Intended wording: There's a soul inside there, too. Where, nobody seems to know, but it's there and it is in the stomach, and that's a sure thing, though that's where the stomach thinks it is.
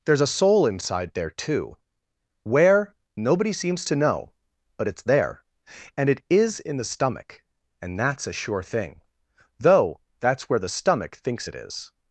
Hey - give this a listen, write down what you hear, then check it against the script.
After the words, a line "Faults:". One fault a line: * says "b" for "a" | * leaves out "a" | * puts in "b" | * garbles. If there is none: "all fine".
There's a soul inside there, too. Where, nobody seems to know, but it's there and it is in the stomach, and that's a sure thing, though that's where the stomach thinks it is.
Faults:
all fine